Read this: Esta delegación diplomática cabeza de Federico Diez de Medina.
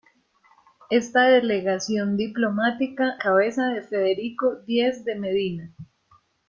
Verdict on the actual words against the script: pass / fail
pass